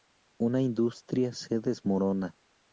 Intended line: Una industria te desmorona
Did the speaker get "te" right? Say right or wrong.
wrong